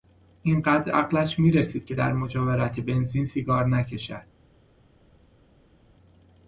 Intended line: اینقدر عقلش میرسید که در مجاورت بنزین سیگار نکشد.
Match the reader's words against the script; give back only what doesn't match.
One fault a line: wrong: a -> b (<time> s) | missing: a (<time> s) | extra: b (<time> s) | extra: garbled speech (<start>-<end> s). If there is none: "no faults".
no faults